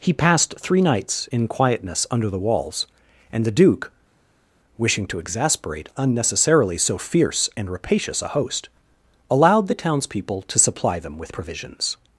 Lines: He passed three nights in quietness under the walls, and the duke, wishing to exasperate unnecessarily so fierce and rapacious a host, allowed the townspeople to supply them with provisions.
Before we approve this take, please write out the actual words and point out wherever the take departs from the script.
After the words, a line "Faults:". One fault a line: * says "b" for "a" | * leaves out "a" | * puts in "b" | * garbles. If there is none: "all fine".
He passed three nights in quietness under the walls, and the duke, wishing to exasperate unnecessarily so fierce and rapacious a host, allowed the townspeople to supply them with provisions.
Faults:
all fine